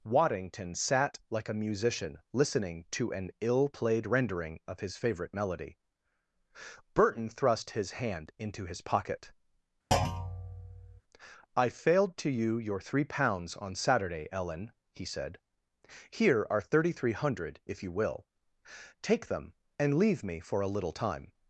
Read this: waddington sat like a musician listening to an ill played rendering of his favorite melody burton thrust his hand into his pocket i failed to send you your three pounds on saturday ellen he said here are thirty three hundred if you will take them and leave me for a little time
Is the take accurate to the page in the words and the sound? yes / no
no